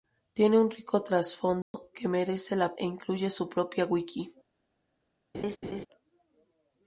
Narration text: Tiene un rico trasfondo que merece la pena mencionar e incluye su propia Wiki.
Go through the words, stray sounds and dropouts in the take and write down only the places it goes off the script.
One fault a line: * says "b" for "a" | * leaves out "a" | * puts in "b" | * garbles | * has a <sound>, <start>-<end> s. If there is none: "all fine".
* has a dropout, 1.6-1.7 s
* leaves out "pena mencionar"
* has a laugh, 5.3-5.9 s